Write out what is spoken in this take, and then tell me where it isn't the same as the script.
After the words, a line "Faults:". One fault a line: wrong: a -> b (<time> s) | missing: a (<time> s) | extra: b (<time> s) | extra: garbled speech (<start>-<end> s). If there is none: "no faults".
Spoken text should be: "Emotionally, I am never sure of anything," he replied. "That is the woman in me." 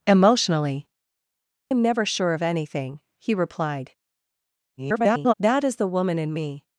"Emotionally, am never sure of anything," he replied. [garbled] "That is the woman in me."
Faults:
missing: I (0.9 s)
extra: garbled speech (4.8-5.3 s)